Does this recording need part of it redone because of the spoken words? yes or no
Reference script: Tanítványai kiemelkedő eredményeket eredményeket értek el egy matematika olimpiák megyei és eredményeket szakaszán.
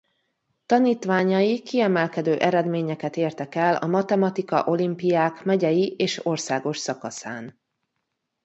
yes